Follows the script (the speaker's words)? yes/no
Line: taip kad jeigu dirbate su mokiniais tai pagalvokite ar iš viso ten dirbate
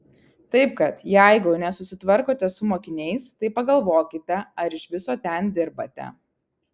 no